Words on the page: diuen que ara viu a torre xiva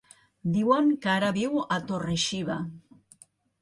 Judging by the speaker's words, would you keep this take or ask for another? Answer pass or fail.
pass